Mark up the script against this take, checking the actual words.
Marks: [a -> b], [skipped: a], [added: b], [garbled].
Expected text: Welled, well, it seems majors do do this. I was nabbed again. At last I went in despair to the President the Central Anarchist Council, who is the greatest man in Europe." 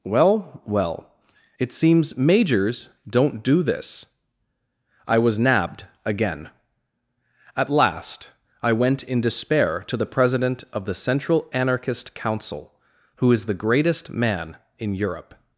[Welled, -> Well] well, it seems majors [do -> don't] do this. I was nabbed again. At last I went in despair to the President [added: of] the Central Anarchist Council, who is the greatest man in Europe."